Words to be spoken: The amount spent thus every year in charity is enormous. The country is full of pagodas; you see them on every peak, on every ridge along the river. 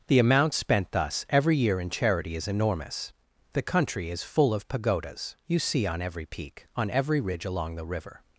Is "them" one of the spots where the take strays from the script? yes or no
yes